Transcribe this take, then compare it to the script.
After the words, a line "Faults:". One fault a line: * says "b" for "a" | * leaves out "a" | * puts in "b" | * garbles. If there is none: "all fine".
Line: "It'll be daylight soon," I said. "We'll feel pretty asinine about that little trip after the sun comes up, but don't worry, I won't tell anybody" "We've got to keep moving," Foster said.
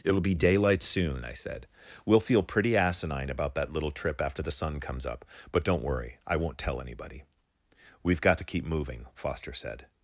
"It'll be daylight soon," I said. "We'll feel pretty asinine about that little trip after the sun comes up, but don't worry, I won't tell anybody" "We've got to keep moving," Foster said.
Faults:
all fine